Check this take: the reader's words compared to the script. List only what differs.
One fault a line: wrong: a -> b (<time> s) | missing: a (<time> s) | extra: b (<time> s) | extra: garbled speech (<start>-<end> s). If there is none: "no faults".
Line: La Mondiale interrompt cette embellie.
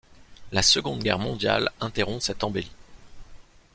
extra: Seconde Guerre (0.6 s)